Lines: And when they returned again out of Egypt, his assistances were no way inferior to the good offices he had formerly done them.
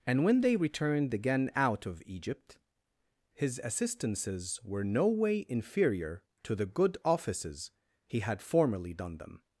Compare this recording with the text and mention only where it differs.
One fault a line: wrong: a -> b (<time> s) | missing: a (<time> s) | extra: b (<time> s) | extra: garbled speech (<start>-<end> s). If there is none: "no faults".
no faults